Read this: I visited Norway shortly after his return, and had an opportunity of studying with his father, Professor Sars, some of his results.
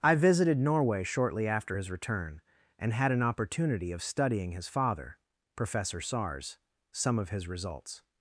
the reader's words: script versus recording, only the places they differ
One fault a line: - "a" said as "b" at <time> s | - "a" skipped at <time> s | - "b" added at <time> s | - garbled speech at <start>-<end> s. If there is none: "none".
- "with" skipped at 4.5 s